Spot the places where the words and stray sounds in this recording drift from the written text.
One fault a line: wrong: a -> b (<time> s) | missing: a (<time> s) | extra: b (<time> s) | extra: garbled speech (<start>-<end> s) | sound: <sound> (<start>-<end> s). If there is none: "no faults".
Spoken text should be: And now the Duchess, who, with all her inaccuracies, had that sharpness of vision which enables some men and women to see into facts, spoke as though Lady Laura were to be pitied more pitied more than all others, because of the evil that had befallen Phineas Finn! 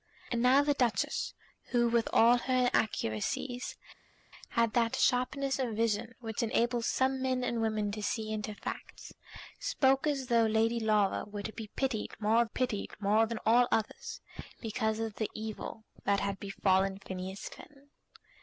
no faults